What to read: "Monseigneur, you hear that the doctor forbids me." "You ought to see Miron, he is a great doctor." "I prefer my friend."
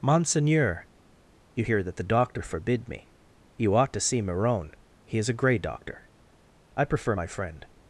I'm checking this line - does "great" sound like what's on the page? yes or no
no